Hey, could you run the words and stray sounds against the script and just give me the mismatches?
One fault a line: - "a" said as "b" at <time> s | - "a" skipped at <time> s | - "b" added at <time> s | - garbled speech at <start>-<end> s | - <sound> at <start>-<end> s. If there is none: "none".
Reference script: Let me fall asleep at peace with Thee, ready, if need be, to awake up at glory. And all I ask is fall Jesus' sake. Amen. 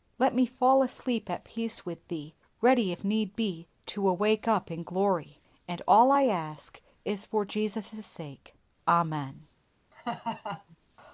- "at" said as "in" at 4.7 s
- "fall" said as "for" at 7.2 s
- laugh at 9.9-10.8 s